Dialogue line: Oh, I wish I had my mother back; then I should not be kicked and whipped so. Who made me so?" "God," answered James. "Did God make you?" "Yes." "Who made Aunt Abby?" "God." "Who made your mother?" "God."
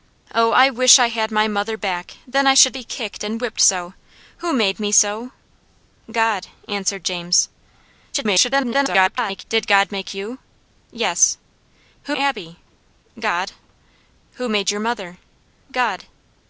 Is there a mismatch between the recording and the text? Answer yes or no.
yes